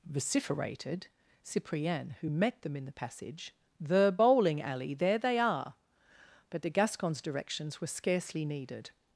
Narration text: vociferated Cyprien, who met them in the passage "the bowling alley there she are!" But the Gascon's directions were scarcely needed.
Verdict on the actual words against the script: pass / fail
fail